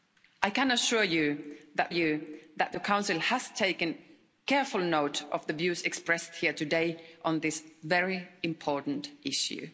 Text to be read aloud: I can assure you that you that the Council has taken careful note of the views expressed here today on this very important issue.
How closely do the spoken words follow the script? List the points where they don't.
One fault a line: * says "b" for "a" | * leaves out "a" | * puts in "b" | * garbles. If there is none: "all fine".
all fine